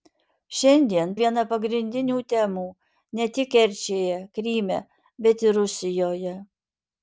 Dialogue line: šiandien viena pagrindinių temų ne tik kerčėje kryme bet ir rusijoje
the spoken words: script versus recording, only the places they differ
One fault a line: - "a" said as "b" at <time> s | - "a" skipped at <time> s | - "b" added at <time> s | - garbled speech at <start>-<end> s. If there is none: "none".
none